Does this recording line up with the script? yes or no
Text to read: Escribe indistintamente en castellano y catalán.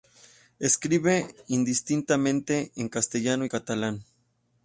yes